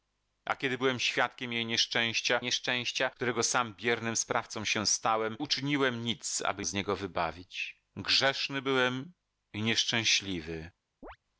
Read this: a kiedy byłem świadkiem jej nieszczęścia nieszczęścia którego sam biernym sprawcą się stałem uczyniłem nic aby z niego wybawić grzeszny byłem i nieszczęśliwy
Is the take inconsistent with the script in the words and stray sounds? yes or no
yes